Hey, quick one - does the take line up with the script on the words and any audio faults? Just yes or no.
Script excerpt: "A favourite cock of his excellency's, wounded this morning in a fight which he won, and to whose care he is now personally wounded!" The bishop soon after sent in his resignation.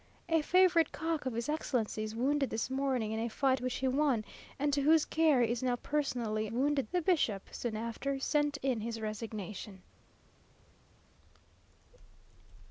yes